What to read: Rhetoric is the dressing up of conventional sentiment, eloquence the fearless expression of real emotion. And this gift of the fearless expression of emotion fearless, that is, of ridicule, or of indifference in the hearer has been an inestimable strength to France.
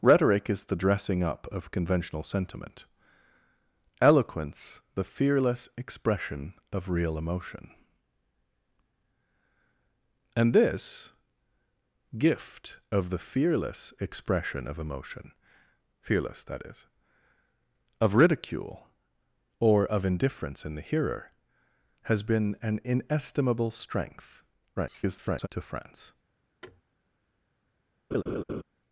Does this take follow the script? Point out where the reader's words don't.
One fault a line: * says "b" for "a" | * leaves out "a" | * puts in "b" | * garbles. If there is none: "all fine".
* garbles